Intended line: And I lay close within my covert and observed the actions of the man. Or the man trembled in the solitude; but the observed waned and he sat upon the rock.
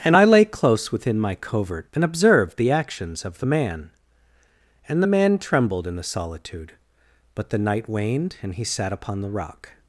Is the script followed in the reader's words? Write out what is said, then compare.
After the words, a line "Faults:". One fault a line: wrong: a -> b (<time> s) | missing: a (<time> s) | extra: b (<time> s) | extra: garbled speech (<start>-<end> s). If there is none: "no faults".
And I lay close within my covert and observed the actions of the man. And the man trembled in the solitude; but the night waned and he sat upon the rock.
Faults:
wrong: Or -> And (4.9 s)
wrong: observed -> night (7.6 s)